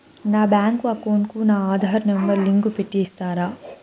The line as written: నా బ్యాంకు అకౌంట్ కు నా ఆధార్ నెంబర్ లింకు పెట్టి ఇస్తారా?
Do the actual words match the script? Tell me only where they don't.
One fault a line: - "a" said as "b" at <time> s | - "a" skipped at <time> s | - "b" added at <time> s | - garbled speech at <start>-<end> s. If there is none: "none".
none